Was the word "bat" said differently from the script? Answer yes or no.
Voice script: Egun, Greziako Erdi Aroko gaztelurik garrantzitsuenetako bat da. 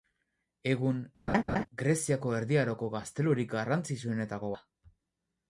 yes